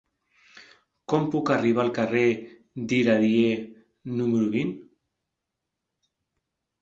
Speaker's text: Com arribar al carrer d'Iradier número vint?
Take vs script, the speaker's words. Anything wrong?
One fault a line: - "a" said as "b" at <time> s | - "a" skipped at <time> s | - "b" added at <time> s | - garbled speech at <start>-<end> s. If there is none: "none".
- "puc" added at 1.3 s